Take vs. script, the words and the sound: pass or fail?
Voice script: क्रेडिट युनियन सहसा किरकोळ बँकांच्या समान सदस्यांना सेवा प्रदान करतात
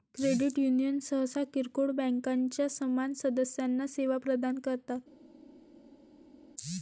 pass